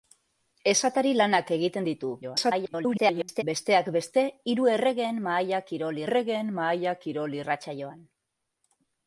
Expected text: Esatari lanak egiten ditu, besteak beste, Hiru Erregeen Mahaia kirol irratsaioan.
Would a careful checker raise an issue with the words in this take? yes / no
yes